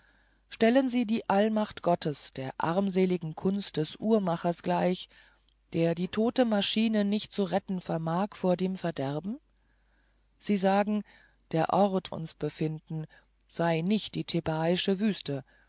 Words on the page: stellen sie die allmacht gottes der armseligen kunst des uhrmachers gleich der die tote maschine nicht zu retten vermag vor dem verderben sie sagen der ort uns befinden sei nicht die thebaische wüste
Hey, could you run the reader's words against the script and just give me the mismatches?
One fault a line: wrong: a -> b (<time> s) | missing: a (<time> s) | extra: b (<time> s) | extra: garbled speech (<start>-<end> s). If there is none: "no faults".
no faults